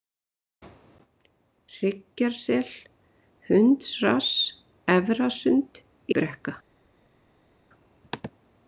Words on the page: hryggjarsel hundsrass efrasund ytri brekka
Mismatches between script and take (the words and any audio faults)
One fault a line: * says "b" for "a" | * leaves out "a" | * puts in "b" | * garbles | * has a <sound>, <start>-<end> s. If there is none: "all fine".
* leaves out "ytri"